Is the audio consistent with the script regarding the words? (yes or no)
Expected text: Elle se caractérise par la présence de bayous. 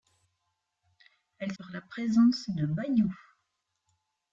no